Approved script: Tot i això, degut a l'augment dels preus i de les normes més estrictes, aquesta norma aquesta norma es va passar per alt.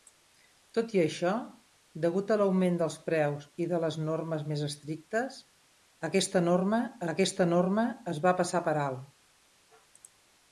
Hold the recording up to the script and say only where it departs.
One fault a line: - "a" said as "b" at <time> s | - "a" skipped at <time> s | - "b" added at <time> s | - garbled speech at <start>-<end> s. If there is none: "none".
none